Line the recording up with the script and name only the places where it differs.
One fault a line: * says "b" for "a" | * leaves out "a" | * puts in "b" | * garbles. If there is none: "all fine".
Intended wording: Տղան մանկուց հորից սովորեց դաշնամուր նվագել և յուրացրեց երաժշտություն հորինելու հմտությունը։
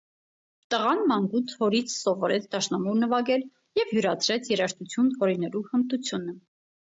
all fine